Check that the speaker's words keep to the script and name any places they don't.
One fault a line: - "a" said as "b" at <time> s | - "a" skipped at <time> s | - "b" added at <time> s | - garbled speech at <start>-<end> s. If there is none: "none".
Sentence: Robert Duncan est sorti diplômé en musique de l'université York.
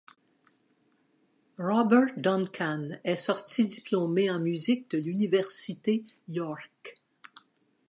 none